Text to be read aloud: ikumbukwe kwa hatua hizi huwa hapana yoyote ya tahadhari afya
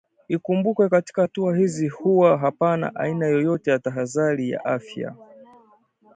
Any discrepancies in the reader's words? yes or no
yes